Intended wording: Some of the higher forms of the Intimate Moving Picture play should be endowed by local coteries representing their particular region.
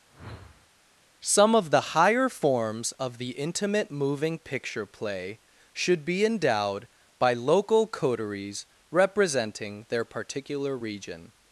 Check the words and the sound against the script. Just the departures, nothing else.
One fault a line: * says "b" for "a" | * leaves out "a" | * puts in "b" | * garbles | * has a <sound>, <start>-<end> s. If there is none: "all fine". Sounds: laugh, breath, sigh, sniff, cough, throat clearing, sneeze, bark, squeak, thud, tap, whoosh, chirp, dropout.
* has a whoosh, 0.1-0.7 s